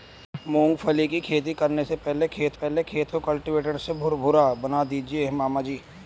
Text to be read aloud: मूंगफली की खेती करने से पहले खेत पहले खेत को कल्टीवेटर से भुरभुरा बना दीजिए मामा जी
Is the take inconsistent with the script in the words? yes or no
no